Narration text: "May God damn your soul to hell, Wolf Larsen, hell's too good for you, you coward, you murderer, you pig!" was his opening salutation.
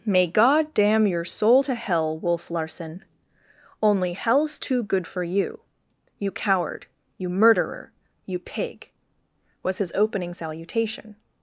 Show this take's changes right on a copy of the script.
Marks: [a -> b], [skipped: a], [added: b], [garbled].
"May God damn your soul to hell, Wolf Larsen, [added: only] hell's too good for you, you coward, you murderer, you pig!" was his opening salutation.